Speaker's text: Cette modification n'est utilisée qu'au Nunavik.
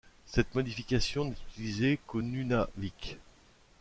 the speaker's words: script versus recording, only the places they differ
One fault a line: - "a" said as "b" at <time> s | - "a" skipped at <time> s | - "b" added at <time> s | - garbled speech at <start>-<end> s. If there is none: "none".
none